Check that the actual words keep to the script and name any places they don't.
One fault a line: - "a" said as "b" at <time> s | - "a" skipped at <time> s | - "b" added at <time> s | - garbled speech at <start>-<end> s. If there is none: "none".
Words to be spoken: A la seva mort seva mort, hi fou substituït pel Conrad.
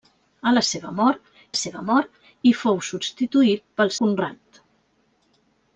none